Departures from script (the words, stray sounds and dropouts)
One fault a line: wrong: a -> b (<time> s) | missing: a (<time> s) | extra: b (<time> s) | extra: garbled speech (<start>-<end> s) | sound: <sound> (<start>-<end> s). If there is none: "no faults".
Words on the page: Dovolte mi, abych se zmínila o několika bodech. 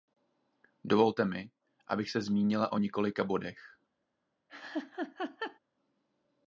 sound: laugh (4.5-5.6 s)